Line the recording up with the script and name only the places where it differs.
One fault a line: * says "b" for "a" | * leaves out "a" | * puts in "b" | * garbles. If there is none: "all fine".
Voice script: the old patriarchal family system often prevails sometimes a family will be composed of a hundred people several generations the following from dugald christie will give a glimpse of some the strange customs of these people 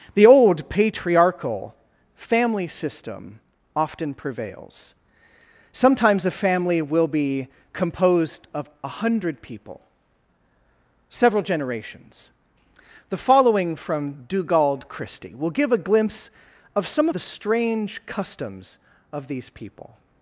all fine